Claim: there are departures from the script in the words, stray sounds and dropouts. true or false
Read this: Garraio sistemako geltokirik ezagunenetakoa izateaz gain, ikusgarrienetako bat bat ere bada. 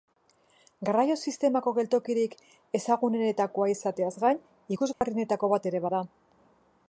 true